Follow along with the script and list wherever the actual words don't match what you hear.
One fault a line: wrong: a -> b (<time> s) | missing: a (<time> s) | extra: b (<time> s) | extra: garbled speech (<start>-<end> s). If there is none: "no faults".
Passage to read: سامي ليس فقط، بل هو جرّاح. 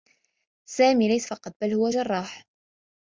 no faults